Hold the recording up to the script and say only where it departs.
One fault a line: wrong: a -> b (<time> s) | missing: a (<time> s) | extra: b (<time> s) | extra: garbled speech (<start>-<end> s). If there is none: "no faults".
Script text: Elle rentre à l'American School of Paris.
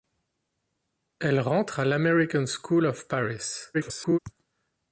extra: garbled speech (3.7-4.2 s)